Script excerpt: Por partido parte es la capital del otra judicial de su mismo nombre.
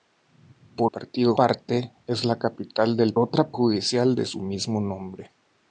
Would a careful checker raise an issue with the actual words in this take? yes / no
no